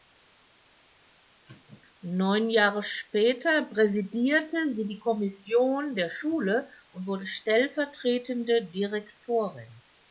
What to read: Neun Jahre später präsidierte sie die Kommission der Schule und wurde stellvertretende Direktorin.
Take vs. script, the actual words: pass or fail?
pass